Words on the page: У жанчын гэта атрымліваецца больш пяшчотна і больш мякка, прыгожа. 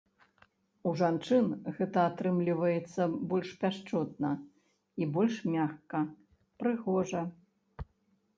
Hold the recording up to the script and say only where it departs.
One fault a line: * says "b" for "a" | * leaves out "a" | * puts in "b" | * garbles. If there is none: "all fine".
all fine